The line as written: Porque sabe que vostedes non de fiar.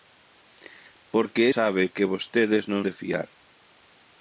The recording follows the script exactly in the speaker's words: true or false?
true